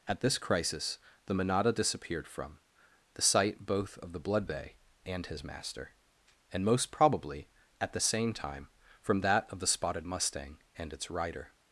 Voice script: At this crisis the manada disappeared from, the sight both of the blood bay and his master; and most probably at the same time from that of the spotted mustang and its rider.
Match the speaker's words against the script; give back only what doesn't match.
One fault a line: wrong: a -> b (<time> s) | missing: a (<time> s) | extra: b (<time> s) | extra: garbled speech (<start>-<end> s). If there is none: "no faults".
no faults